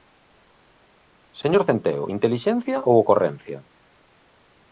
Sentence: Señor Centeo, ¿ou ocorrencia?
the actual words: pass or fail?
fail